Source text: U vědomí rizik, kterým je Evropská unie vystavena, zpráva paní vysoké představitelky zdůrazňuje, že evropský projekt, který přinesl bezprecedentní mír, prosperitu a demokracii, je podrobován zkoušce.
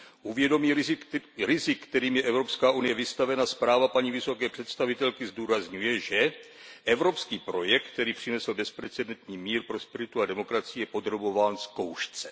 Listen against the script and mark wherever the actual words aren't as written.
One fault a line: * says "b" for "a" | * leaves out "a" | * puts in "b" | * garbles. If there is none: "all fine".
all fine